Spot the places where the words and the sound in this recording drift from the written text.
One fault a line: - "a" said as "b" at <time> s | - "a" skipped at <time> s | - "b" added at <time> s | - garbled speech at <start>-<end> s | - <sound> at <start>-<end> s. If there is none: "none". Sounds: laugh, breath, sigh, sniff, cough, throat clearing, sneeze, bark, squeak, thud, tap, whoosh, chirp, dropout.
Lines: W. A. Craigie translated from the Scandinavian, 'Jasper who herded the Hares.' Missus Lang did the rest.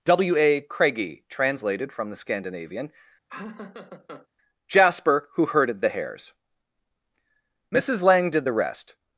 - laugh at 3.3-4.3 s